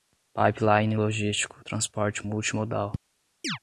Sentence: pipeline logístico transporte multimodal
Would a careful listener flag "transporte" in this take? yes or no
no